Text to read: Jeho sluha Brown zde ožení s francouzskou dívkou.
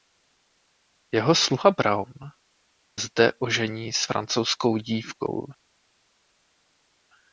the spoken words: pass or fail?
pass